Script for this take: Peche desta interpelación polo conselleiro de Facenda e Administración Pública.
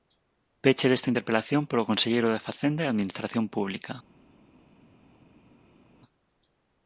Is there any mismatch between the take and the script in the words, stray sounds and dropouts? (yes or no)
no